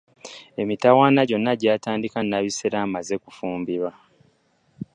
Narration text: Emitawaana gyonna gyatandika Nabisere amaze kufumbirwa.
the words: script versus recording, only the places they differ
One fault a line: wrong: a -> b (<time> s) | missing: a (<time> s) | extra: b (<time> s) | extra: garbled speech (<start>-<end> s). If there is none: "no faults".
no faults